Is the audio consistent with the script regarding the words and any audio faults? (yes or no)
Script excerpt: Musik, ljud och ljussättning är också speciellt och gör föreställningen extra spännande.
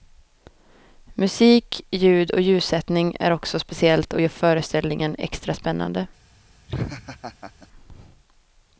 no